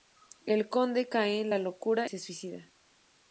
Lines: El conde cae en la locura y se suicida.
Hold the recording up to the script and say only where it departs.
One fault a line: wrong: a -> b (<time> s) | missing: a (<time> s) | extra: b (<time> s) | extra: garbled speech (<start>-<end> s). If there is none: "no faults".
missing: y (2.1 s)